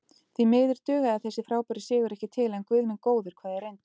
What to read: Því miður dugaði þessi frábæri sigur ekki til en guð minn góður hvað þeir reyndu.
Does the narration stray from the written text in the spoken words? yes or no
no